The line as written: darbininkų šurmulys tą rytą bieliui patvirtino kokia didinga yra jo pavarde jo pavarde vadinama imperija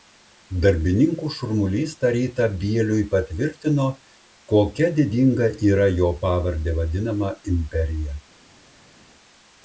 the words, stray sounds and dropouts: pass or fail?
fail